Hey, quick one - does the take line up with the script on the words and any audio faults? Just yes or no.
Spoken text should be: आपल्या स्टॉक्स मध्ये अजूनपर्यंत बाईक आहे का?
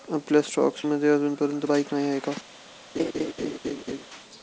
no